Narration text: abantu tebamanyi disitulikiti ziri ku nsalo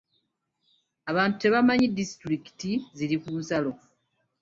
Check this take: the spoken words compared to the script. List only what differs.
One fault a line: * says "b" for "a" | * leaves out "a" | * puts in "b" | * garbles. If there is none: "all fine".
all fine